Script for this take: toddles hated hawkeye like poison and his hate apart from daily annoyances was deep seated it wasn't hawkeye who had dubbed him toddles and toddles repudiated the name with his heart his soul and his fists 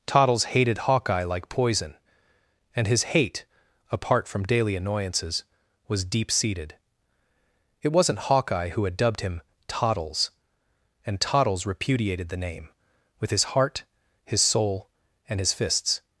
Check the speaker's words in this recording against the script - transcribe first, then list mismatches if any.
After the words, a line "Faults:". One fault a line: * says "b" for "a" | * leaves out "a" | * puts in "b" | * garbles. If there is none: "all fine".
toddles hated hawkeye like poison and his hate apart from daily annoyances was deep seated it wasn't hawkeye who had dubbed him toddles and toddles repudiated the name with his heart his soul and his fists
Faults:
all fine